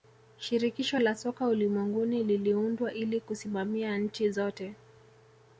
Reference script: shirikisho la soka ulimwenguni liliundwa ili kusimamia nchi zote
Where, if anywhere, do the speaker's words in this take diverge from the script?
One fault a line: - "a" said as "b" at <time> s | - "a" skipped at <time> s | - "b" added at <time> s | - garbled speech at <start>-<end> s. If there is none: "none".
none